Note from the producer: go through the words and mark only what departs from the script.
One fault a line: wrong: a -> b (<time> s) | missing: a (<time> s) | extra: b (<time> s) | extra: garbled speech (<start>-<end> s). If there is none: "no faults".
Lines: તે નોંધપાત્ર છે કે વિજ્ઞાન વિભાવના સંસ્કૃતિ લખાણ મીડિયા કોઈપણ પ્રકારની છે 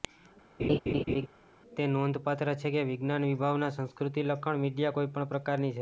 no faults